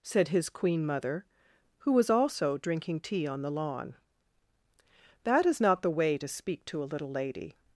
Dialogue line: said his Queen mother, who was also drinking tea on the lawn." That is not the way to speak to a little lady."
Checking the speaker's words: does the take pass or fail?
pass